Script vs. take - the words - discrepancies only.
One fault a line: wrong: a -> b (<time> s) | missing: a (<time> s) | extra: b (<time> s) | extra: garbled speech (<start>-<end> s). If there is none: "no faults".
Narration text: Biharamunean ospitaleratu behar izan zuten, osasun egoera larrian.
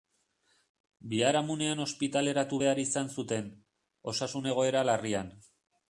no faults